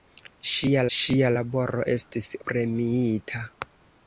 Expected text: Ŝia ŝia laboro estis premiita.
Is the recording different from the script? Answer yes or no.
no